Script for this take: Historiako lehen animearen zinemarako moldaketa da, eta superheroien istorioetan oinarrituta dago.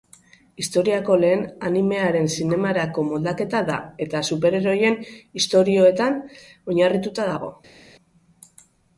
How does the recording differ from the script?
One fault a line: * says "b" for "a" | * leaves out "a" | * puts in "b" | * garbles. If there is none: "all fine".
all fine